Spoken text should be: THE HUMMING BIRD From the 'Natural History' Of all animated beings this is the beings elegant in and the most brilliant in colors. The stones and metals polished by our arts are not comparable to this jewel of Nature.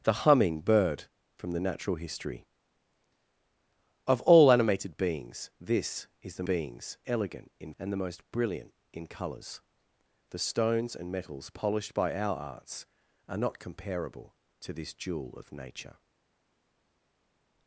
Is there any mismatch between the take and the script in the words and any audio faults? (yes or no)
no